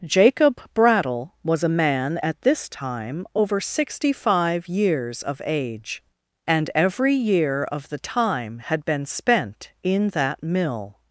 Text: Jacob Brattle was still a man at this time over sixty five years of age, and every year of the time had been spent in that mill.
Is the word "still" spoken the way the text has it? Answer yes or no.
no